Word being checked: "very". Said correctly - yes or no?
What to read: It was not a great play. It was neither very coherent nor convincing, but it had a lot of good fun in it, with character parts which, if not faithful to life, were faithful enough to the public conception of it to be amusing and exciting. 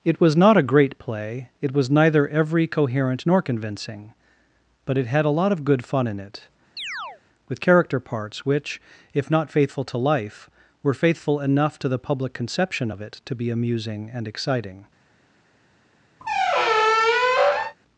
no